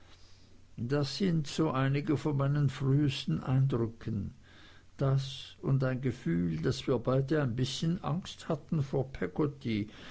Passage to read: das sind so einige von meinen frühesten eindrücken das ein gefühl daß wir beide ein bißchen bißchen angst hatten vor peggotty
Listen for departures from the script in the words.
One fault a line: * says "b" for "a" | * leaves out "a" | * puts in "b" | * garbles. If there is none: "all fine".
* puts in "und"
* leaves out "bißchen"